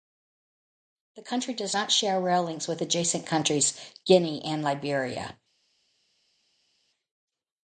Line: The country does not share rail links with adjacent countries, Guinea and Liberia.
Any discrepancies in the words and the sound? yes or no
no